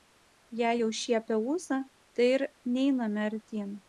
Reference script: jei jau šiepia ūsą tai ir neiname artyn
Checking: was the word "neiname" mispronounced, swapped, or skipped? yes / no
no